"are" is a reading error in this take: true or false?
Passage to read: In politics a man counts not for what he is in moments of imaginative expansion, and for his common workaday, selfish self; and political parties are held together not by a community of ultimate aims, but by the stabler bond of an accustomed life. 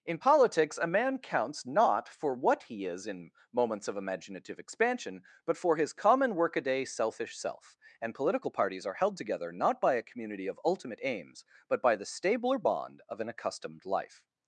false